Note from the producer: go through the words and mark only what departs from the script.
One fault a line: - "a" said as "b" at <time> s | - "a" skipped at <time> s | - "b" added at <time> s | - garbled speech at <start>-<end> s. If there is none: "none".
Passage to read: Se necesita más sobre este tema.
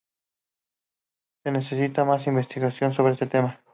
- "investigación" added at 2.3 s